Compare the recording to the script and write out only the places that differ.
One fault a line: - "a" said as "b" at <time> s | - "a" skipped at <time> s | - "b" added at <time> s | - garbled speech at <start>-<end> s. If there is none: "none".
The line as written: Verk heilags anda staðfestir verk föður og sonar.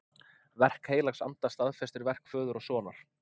none